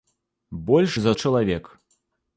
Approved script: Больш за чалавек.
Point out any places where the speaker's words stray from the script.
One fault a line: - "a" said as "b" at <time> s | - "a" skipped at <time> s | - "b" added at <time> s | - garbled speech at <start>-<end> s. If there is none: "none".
none